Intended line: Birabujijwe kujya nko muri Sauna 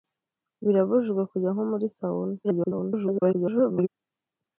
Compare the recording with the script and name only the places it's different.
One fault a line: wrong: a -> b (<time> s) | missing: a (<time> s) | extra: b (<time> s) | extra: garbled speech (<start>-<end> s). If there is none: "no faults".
extra: garbled speech (2.4-3.9 s)